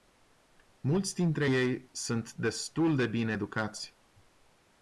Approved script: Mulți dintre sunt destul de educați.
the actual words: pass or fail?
fail